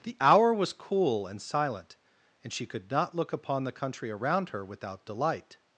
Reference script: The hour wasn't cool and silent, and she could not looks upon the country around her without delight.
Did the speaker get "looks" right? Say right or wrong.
wrong